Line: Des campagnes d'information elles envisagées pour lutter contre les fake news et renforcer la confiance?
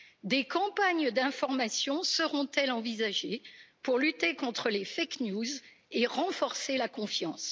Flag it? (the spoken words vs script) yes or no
yes